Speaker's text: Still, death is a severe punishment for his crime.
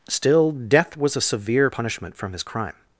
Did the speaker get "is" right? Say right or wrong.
wrong